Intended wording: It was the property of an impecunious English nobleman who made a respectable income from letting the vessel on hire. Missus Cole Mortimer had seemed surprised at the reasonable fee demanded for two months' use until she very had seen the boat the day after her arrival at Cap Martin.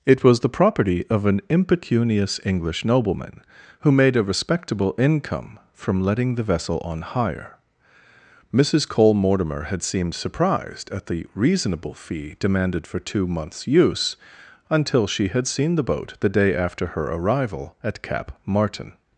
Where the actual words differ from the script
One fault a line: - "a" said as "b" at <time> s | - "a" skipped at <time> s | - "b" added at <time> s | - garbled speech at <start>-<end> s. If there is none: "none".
- "very" skipped at 15.3 s